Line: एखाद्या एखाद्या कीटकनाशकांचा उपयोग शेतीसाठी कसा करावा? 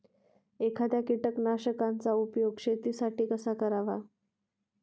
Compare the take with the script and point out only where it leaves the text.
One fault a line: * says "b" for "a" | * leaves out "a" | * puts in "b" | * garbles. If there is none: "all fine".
* leaves out "एखाद्या"